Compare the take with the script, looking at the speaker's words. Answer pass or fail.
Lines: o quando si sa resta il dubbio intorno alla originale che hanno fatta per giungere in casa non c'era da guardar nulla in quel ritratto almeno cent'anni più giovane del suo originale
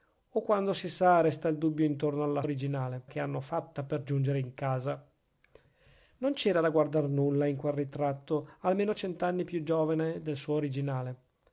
pass